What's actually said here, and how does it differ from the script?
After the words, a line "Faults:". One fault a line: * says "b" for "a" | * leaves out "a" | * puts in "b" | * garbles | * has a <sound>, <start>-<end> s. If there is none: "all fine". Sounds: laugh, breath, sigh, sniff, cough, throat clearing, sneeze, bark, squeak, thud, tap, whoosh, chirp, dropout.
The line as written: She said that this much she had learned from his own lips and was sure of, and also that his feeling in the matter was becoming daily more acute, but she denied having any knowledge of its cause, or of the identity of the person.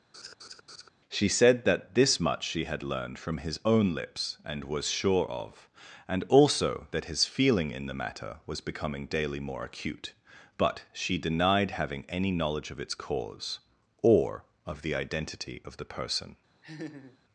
She said that this much she had learned from his own lips and was sure of, and also that his feeling in the matter was becoming daily more acute, but she denied having any knowledge of its cause, or of the identity of the person.
Faults:
* has a laugh, 0.1-0.9 s
* has a laugh, 16.6-17.2 s